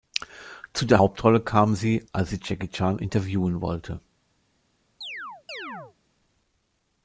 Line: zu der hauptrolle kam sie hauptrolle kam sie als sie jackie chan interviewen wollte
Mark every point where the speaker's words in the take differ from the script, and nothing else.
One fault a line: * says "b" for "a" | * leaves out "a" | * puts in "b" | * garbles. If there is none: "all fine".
* leaves out "hauptrolle kam sie"